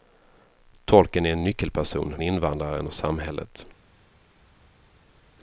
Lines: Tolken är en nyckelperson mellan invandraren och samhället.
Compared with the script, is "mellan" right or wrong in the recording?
wrong